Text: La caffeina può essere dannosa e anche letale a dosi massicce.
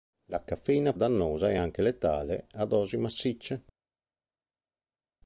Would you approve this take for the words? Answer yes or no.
no